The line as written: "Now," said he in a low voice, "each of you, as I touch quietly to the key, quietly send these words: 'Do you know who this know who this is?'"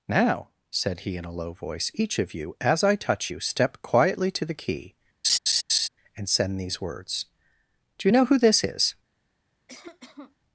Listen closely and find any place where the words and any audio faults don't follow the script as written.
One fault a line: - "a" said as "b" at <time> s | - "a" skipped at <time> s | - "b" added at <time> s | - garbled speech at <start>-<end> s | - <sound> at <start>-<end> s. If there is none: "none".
- "you step" added at 3.3 s
- laugh at 5.2-5.9 s
- "quietly" said as "and" at 6.1 s
- "know who this" skipped at 8.6 s
- cough at 9.7-10.4 s